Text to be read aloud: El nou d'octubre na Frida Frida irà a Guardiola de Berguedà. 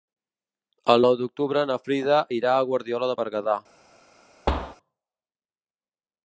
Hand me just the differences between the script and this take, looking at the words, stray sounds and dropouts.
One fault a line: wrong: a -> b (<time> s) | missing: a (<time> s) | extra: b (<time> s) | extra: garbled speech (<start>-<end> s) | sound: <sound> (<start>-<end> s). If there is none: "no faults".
missing: Frida (2.2 s)
sound: thud (4.5-4.8 s)